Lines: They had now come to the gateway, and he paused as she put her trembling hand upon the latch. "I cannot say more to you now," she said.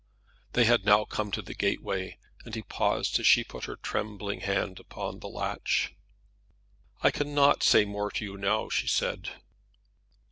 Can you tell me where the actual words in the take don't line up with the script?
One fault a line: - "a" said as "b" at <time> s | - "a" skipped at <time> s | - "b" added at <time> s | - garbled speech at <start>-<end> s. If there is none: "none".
none